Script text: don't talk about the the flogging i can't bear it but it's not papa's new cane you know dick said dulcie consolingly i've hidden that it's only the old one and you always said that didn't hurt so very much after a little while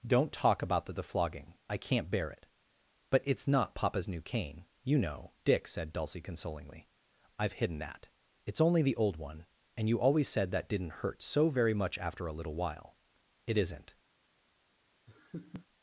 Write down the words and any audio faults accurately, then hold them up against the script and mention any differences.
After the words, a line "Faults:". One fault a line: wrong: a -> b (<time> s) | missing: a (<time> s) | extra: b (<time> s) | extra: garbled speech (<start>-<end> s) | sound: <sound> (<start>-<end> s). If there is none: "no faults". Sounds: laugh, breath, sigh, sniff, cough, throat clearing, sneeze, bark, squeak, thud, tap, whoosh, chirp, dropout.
don't talk about the the flogging i can't bear it but it's not papa's new cane you know dick said dulcie consolingly i've hidden that it's only the old one and you always said that didn't hurt so very much after a little while it isn't
Faults:
extra: it isn't (13.4 s)
sound: laugh (15.1-15.7 s)